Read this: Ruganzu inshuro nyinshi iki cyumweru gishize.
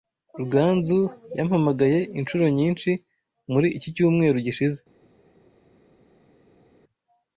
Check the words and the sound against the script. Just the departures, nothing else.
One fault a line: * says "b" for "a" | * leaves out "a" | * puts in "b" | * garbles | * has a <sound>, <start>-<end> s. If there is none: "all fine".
* puts in "yampamagaye"
* puts in "muri"